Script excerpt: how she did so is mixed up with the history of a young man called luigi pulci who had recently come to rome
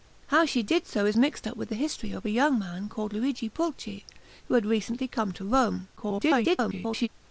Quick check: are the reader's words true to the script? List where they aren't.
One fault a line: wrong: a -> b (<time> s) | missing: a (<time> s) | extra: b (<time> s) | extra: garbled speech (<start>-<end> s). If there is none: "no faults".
extra: garbled speech (6.0-7.1 s)